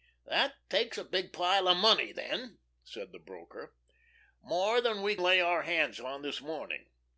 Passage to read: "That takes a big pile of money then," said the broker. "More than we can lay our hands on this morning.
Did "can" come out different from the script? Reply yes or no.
yes